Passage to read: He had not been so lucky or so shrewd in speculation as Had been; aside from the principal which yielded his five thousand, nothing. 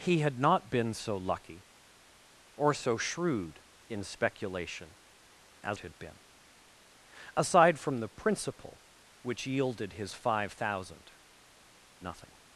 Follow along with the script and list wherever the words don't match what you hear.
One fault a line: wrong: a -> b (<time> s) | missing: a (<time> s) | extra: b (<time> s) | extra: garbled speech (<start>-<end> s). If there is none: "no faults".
no faults